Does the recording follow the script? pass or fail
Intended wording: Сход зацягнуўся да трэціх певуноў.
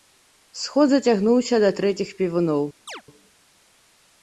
pass